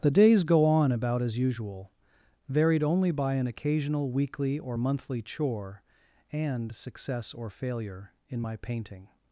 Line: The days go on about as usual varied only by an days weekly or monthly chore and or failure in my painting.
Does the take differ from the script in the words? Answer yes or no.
yes